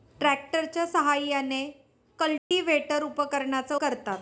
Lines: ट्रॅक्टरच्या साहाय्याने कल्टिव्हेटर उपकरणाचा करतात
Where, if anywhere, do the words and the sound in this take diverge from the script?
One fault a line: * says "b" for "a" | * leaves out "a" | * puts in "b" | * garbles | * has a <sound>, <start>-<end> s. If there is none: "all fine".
* has a dropout, 2.4-2.5 s